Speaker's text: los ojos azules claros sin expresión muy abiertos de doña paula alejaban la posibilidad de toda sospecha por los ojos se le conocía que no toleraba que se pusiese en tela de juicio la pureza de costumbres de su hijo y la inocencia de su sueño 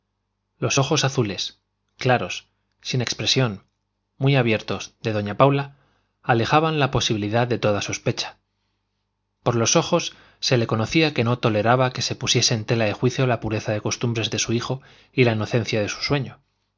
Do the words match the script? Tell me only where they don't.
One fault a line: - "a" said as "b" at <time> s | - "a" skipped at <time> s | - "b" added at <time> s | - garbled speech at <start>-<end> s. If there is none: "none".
none